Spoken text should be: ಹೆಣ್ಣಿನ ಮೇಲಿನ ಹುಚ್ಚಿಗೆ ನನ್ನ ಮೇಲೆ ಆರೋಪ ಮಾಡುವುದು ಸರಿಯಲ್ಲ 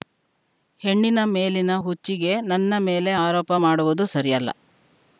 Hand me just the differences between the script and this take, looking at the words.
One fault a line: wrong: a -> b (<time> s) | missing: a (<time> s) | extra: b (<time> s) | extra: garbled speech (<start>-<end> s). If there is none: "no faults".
no faults